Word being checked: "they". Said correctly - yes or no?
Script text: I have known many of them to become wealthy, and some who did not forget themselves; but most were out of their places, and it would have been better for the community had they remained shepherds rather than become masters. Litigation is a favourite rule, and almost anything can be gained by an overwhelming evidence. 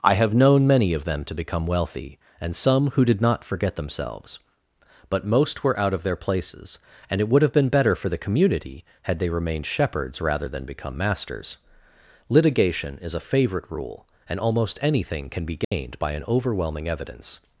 yes